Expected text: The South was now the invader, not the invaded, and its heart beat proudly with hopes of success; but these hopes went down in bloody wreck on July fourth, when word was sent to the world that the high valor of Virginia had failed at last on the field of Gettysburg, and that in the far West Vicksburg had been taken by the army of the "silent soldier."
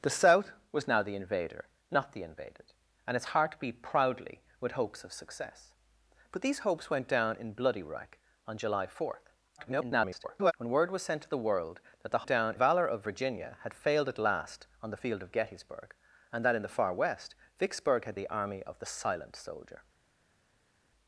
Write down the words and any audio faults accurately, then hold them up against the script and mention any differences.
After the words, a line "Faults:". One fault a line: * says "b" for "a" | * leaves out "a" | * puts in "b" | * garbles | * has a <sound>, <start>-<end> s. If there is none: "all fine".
The South was now the invader, not the invaded, and its heart beat proudly with hopes of success; but these hopes went down in bloody wreck on July fourth, [garbled] when word was sent to the world that the down valor of Virginia had failed at last on the field of Gettysburg, and that in the far West Vicksburg had the army of the "silent soldier."
Faults:
* garbles
* says "down" for "high"
* leaves out "been taken by"